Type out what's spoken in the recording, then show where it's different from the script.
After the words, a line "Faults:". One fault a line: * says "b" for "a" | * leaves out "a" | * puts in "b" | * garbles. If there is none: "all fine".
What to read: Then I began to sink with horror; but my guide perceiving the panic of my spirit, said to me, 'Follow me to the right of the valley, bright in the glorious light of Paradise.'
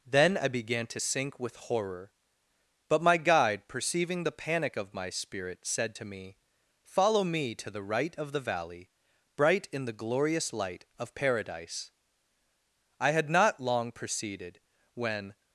Then I began to sink with horror; but my guide perceiving the panic of my spirit, said to me, 'Follow me to the right of the valley, bright in the glorious light of Paradise.' I had not long proceeded, when
Faults:
* puts in "I had not long proceeded when"